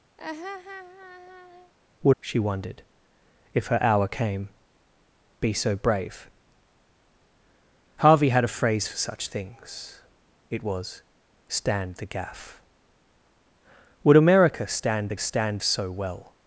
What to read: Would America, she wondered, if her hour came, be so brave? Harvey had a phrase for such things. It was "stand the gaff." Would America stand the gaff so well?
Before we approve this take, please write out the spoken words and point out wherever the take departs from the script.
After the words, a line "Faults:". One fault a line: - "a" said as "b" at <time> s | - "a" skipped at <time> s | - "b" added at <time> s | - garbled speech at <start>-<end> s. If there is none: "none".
Would She wondered, if her hour came, be so brave? Harvey had a phrase for such things. It was "stand the gaff." Would America stand the stand so well?
Faults:
- "America" skipped at 2.2 s
- "gaff" said as "stand" at 15.2 s